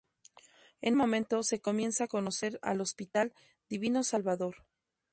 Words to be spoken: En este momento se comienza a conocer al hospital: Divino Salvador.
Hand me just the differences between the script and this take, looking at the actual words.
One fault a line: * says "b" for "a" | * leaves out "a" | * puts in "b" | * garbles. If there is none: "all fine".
* leaves out "este"